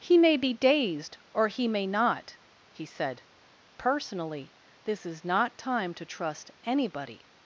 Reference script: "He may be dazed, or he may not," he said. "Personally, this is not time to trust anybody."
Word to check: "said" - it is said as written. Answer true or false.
true